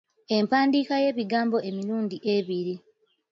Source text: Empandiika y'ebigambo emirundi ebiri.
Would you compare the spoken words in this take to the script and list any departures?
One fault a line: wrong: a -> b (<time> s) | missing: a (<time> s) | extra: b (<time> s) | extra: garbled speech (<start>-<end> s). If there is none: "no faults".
no faults